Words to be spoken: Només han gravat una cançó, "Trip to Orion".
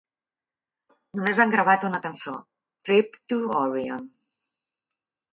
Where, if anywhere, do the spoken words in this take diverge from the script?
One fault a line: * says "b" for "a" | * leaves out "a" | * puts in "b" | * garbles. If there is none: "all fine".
all fine